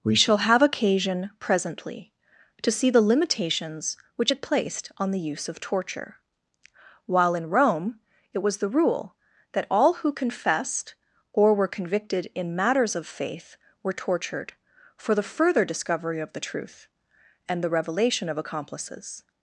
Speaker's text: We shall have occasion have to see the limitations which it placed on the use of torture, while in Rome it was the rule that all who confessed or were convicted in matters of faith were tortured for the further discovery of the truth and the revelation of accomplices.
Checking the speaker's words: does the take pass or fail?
fail